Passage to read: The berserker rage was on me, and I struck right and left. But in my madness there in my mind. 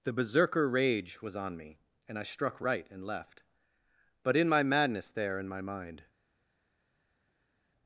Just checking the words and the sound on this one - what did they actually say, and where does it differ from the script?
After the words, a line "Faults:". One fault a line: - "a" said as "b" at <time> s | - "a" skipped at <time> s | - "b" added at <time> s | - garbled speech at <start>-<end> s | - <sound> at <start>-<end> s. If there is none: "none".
The berserker rage was on me, and I struck right and left. But in my madness there in my mind.
Faults:
none